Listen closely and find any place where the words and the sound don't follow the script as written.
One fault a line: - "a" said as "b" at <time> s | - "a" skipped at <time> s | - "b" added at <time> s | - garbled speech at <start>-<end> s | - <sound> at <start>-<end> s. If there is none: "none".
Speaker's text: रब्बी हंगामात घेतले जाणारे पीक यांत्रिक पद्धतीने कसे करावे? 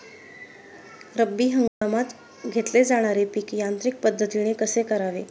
- dropout at 1.7-1.8 s